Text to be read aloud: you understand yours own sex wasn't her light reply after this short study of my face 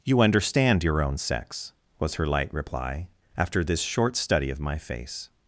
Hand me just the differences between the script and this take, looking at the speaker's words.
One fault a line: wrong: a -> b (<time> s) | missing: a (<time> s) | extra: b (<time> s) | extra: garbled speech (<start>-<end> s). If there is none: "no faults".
wrong: yours -> your (0.8 s)
wrong: wasn't -> was (2.0 s)